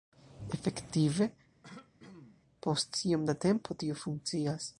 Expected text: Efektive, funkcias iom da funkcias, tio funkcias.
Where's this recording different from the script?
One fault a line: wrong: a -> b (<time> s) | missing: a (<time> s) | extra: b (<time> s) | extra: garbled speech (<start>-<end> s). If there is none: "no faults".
wrong: funkcias -> post (2.7 s)
wrong: funkcias -> tempo (3.5 s)